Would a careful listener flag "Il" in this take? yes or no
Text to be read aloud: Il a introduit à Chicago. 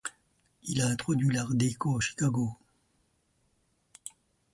no